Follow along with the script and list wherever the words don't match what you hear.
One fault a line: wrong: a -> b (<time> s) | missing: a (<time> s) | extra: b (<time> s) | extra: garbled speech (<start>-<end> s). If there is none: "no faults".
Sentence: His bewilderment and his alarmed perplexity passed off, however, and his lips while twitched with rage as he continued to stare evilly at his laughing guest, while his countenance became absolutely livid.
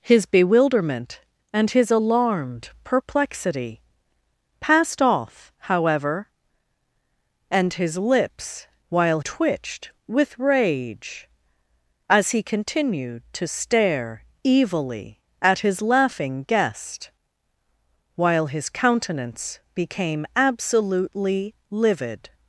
no faults